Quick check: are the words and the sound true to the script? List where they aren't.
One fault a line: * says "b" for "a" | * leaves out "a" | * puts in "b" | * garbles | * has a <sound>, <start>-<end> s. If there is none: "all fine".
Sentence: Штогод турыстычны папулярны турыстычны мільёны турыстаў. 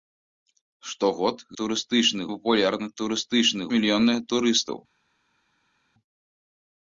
all fine